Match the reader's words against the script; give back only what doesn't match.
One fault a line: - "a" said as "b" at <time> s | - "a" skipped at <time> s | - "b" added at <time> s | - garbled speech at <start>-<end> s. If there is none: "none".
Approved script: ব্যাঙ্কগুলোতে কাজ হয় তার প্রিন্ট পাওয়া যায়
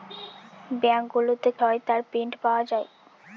- "কাজ" skipped at 1.5 s